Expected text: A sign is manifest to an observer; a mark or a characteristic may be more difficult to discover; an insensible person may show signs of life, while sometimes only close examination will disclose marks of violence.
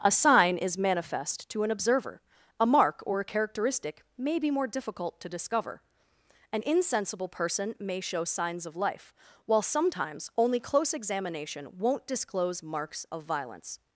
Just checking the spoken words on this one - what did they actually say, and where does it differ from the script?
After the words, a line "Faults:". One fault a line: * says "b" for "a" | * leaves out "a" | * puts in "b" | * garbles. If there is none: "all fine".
A sign is manifest to an observer; a mark or a characteristic may be more difficult to discover; an insensible person may show signs of life, while sometimes only close examination won't disclose marks of violence.
Faults:
* says "won't" for "will"